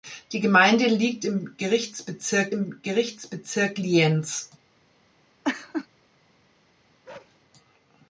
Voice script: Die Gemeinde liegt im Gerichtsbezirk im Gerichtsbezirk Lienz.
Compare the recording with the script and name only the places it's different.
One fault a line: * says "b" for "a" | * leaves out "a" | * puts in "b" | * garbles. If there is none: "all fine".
all fine